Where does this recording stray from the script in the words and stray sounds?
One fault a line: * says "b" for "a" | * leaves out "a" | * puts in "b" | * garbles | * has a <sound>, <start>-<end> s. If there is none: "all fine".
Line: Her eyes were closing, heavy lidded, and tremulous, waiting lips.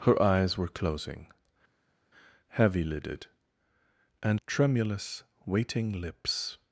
all fine